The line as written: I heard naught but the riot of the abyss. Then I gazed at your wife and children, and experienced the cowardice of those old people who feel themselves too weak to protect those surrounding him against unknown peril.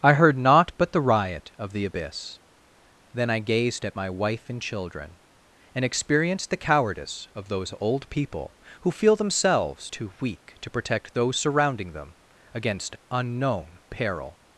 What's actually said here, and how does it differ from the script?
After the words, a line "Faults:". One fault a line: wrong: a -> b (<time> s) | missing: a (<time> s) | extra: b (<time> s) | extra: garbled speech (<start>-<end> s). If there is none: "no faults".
I heard naught but the riot of the abyss. Then I gazed at my wife and children, and experienced the cowardice of those old people who feel themselves too weak to protect those surrounding them against unknown peril.
Faults:
wrong: your -> my (4.0 s)
wrong: him -> them (11.9 s)